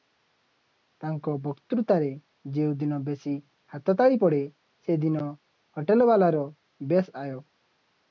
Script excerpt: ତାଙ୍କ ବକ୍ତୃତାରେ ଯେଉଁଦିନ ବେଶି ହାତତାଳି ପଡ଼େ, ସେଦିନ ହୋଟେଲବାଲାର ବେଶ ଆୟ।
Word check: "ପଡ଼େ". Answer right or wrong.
right